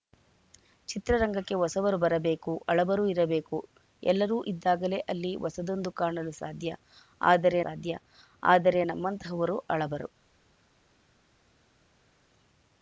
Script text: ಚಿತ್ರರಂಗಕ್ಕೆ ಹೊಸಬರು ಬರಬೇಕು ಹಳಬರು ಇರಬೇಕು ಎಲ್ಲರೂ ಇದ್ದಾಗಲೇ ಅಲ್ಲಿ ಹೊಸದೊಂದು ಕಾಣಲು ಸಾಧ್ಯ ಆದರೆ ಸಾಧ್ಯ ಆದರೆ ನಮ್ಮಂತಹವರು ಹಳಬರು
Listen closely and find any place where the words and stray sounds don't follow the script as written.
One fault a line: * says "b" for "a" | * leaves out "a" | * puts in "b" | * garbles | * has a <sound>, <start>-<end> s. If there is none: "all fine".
all fine